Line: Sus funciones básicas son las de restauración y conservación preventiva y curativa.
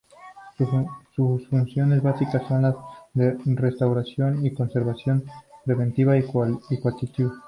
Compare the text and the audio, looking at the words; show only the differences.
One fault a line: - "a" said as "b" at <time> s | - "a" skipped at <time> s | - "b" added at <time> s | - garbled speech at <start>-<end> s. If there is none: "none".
none